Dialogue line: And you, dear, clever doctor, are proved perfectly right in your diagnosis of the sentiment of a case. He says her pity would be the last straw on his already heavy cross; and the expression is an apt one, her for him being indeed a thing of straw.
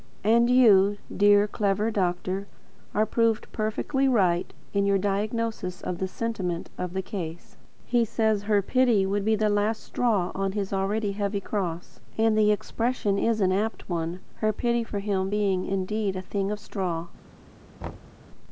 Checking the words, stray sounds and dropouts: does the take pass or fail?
fail